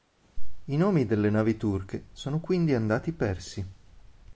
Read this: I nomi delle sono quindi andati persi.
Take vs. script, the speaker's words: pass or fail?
fail